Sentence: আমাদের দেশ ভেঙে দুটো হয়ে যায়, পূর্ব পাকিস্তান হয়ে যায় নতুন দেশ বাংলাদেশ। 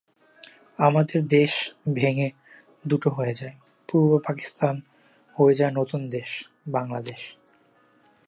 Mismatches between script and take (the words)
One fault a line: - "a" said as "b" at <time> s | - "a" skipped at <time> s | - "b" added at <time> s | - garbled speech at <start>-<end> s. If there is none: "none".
none